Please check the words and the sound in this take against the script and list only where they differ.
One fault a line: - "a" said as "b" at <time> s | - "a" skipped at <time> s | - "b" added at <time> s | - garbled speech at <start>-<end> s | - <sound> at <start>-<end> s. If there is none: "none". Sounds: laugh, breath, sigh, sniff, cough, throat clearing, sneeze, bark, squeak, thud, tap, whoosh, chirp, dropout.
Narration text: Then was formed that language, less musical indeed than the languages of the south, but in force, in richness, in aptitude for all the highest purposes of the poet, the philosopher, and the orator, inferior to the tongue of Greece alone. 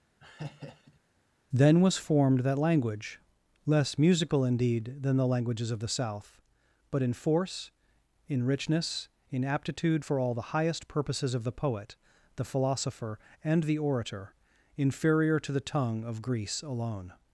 - laugh at 0.2-1.0 s